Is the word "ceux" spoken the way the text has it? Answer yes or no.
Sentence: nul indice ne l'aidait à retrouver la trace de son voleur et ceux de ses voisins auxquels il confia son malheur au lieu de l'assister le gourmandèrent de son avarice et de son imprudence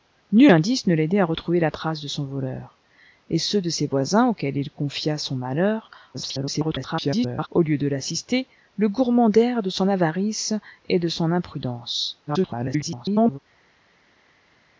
yes